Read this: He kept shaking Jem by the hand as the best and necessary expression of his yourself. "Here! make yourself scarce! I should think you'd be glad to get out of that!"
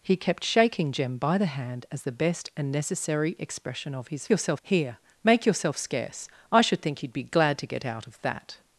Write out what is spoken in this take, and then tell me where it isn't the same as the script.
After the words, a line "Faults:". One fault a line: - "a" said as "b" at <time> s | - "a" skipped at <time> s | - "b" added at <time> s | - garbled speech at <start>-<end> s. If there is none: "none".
He kept shaking Jem by the hand as the best and necessary expression of his yourself. "Here! make yourself scarce! I should think you'd be glad to get out of that!"
Faults:
none